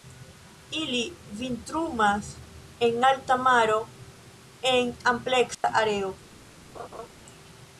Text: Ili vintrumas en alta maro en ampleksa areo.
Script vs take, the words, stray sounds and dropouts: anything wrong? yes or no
yes